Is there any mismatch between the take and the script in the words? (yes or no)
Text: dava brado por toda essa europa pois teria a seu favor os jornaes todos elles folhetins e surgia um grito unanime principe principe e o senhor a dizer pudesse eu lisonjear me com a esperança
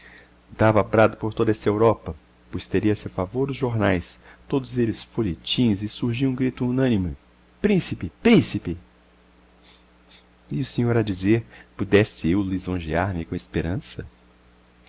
no